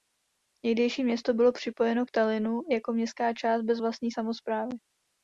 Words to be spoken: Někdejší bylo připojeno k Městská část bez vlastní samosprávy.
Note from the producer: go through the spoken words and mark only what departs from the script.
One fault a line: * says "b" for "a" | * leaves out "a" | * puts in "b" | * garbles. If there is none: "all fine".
* puts in "město"
* puts in "Tallinnu jako"